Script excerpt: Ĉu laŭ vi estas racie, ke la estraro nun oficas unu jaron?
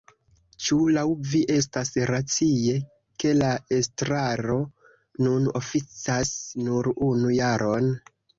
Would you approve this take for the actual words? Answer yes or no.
no